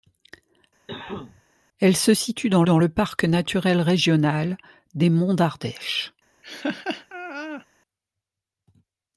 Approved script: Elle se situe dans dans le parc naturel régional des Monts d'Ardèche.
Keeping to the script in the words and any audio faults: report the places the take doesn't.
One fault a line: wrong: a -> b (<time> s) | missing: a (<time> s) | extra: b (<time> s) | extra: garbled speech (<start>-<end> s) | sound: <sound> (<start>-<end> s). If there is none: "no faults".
sound: cough (0.9-1.4 s)
sound: laugh (6.4-7.7 s)